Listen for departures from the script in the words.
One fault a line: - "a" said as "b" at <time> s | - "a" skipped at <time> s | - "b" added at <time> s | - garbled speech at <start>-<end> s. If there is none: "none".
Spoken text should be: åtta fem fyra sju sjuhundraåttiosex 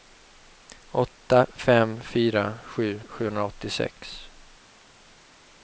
none